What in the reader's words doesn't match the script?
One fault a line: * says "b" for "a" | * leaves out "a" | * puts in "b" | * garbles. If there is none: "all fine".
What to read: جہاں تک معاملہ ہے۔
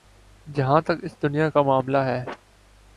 * puts in "اس دنیا کا"